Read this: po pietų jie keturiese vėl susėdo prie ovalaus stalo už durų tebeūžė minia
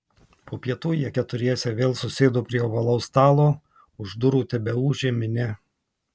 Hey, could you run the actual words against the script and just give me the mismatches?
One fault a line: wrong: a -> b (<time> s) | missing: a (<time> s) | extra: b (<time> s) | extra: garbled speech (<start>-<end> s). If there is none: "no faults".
no faults